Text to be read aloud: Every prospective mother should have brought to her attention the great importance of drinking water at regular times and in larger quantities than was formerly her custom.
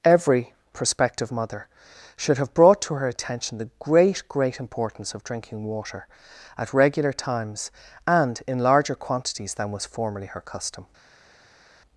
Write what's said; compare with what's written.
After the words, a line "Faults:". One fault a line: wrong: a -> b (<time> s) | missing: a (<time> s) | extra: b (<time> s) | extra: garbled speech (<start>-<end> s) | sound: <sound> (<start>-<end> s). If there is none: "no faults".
Every prospective mother should have brought to her attention the great great importance of drinking water at regular times and in larger quantities than was formerly her custom.
Faults:
extra: great (4.3 s)